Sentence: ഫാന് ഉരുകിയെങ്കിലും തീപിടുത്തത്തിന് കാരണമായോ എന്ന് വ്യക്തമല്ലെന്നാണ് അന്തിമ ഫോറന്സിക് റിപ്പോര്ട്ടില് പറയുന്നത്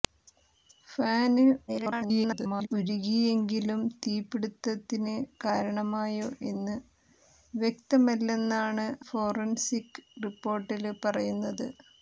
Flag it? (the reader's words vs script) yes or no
yes